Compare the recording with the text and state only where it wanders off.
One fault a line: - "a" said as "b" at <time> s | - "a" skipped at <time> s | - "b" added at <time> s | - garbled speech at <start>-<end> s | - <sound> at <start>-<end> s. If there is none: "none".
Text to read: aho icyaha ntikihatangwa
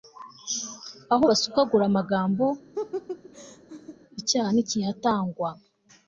- "basukagura amagambo" added at 1.3 s
- laugh at 2.7-4.0 s